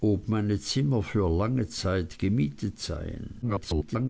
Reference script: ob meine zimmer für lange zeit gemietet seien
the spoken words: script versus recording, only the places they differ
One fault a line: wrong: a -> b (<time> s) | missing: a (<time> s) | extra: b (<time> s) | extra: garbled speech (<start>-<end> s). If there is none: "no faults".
extra: garbled speech (3.4-4.1 s)